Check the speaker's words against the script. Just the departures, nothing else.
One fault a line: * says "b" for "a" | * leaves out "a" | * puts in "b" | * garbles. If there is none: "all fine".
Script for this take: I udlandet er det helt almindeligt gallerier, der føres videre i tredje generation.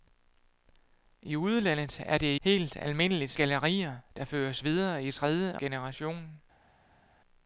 all fine